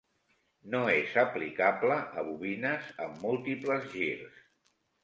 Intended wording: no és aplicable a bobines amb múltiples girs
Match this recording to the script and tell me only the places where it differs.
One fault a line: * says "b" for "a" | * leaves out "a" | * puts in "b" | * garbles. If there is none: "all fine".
all fine